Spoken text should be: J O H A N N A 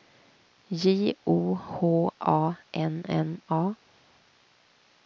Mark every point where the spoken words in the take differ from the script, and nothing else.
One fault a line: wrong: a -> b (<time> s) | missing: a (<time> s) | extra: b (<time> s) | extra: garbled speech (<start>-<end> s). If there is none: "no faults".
no faults